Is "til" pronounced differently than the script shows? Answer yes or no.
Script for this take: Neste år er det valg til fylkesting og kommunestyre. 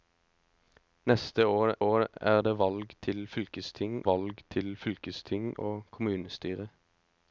no